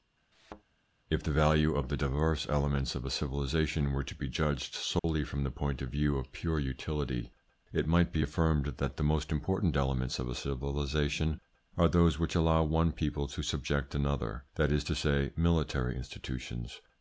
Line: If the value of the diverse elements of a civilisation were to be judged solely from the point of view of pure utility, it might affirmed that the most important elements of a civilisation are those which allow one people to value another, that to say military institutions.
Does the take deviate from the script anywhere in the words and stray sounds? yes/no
yes